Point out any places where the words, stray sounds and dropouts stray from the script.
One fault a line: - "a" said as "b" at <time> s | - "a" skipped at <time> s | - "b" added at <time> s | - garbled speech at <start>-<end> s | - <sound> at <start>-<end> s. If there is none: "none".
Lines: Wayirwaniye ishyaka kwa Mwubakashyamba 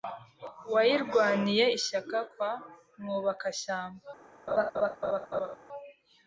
- laugh at 4.5-5.6 s